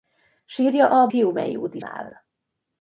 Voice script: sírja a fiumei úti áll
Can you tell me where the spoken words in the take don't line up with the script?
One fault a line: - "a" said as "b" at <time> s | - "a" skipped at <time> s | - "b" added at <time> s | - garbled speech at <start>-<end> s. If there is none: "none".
none